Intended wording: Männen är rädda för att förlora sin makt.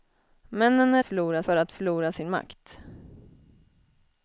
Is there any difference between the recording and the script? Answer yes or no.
yes